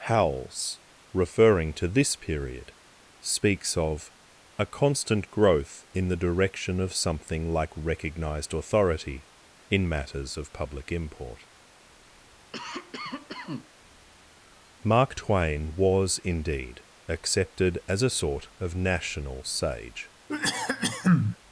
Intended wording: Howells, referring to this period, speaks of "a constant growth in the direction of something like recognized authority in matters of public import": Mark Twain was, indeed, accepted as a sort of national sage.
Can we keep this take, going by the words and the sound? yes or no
no